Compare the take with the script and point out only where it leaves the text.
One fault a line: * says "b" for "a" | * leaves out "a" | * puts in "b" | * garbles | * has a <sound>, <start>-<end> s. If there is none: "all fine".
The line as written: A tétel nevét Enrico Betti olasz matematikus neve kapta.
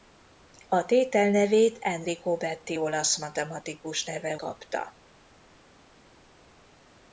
all fine